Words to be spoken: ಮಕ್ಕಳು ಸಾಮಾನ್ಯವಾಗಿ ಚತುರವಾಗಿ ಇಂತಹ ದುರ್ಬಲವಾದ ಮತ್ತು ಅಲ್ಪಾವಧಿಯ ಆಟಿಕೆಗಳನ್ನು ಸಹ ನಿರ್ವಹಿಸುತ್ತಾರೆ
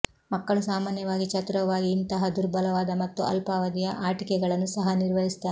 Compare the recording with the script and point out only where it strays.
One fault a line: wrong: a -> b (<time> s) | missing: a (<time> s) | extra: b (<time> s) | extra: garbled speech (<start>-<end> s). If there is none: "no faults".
no faults